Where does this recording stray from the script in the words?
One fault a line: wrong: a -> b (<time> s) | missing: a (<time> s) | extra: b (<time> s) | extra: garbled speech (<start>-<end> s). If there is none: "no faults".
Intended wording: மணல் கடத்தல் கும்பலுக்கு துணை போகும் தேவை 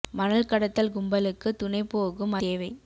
no faults